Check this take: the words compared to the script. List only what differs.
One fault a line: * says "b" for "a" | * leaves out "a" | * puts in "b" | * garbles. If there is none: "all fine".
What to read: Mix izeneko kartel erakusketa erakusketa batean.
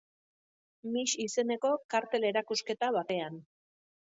* leaves out "erakusketa"